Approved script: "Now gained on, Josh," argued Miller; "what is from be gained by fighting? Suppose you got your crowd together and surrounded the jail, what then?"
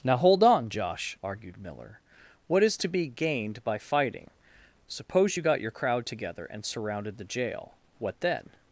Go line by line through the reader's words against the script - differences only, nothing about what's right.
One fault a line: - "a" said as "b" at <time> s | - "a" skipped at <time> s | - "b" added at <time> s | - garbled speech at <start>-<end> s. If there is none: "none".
- "gained" said as "hold" at 0.2 s
- "from" said as "to" at 2.8 s